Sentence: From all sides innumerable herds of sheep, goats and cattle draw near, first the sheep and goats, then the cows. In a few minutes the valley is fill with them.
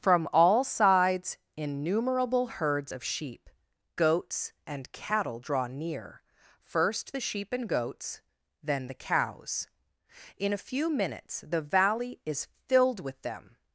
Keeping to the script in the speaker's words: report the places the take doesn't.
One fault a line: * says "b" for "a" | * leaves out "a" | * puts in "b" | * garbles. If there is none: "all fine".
* says "filled" for "fill"